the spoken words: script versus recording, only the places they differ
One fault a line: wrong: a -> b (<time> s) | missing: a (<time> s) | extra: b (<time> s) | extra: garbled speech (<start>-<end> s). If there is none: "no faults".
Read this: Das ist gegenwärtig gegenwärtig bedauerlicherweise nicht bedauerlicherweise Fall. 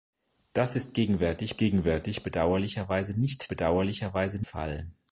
no faults